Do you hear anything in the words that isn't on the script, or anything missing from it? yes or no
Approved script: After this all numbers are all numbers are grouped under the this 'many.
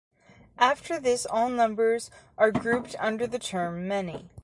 yes